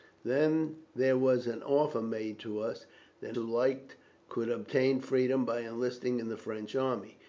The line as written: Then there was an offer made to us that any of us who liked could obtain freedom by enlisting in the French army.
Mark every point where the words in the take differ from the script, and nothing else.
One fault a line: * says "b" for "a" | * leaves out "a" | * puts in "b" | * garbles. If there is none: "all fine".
* leaves out "any of us"